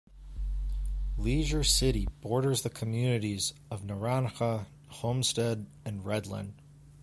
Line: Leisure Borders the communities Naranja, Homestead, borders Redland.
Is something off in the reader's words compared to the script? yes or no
yes